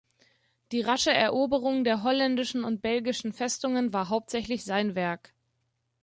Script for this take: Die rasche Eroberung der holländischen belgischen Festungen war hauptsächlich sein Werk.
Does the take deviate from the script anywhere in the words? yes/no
yes